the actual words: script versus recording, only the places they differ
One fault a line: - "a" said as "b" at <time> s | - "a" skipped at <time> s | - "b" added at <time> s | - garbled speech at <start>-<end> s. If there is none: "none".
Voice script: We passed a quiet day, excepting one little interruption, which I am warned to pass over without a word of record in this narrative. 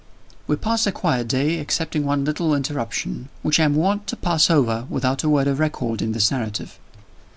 none